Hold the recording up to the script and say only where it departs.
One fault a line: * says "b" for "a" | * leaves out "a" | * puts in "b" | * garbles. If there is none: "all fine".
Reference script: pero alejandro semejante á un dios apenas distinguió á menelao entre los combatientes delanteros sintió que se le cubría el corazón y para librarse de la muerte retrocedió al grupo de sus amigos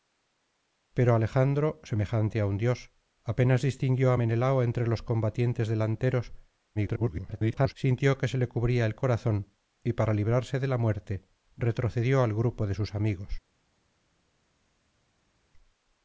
* garbles